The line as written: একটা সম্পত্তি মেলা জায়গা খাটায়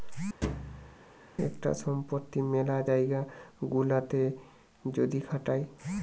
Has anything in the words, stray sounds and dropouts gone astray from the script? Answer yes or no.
yes